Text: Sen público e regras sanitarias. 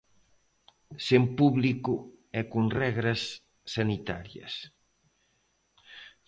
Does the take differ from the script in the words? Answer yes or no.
yes